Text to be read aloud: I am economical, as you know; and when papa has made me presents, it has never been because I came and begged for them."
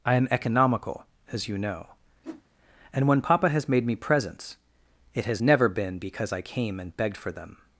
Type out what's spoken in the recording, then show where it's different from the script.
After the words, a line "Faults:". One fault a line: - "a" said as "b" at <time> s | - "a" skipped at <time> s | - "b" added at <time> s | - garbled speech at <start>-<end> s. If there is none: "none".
I am economical, as you know; and when papa has made me presents, it has never been because I came and begged for them."
Faults:
none